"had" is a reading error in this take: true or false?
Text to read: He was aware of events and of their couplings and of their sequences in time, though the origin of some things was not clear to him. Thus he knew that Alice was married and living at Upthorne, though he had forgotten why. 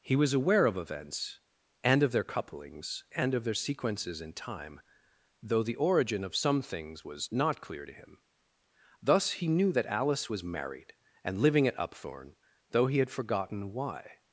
false